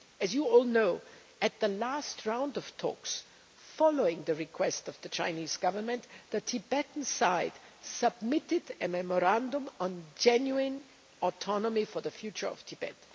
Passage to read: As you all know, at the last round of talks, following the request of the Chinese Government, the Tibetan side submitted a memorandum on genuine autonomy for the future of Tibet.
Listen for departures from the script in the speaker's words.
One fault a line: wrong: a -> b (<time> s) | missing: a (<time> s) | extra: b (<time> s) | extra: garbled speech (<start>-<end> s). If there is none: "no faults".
no faults